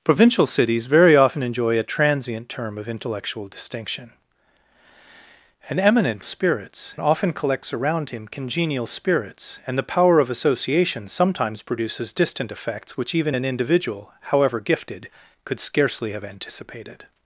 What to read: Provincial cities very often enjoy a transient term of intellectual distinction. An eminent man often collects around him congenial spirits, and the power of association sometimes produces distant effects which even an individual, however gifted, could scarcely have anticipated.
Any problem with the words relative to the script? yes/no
yes